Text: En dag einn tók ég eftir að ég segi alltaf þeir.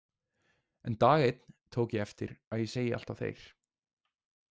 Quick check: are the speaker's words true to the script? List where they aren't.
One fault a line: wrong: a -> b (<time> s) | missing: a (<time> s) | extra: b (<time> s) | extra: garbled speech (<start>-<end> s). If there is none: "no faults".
no faults